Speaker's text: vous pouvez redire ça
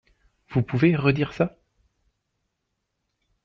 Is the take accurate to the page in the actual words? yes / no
yes